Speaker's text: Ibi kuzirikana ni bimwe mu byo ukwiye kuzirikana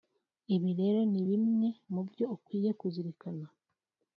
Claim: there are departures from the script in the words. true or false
true